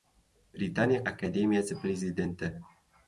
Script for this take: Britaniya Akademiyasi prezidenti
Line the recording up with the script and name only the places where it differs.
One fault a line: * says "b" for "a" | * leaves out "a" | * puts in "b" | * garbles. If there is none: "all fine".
all fine